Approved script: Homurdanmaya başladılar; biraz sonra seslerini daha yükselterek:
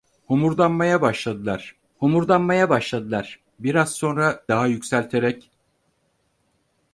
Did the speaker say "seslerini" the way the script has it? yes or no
no